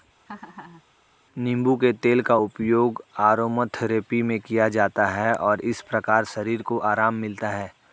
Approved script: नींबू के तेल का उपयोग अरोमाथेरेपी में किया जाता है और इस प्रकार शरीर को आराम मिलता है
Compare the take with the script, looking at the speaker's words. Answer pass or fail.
pass